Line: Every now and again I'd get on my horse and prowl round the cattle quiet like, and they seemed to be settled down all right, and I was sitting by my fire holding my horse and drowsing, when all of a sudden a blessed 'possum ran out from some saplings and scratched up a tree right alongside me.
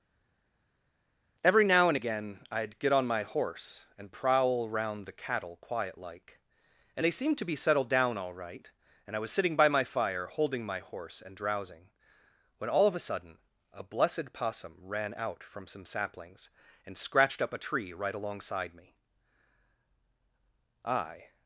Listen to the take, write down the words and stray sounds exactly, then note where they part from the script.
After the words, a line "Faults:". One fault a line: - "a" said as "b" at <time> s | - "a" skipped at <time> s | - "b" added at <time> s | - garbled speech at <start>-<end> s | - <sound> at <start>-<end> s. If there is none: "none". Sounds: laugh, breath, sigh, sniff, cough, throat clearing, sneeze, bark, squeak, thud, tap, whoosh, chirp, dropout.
Every now and again I'd get on my horse and prowl round the cattle quiet like, and they seemed to be settled down all right, and I was sitting by my fire holding my horse and drowsing, when all of a sudden a blessed 'possum ran out from some saplings and scratched up a tree right alongside me. I
Faults:
- "I" added at 20.8 s